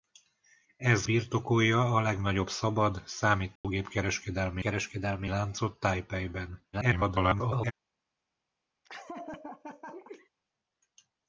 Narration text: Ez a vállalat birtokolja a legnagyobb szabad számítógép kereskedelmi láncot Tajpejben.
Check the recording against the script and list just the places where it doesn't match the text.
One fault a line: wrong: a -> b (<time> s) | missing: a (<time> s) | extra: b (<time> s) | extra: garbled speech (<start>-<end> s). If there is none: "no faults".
missing: a vállalat (1.1 s)
extra: kereskedelmi (4.6 s)
extra: garbled speech (6.7-7.7 s)